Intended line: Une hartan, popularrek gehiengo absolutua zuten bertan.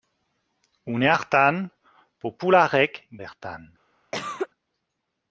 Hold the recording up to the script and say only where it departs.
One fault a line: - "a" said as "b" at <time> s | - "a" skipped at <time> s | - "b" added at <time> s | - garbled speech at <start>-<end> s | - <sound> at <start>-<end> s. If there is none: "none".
- "gehiengo absolutua zuten" skipped at 3.0 s
- cough at 4.1-4.5 s